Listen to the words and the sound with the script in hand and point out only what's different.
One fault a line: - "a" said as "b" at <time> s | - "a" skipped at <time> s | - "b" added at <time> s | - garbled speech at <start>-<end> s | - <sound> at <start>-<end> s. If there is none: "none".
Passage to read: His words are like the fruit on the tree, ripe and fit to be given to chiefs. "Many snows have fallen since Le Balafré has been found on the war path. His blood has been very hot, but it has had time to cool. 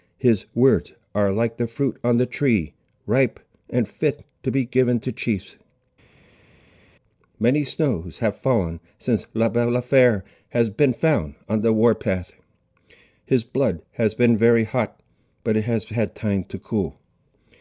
none